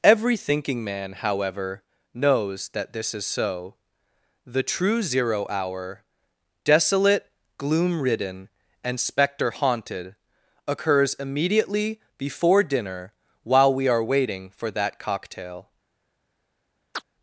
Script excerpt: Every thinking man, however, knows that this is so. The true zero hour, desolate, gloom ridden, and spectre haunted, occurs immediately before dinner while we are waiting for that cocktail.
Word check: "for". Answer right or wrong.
right